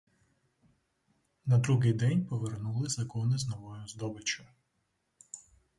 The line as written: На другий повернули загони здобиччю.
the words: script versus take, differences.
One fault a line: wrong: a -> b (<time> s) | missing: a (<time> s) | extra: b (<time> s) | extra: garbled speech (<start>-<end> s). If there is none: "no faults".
extra: день (1.9 s)
extra: з новою (3.4 s)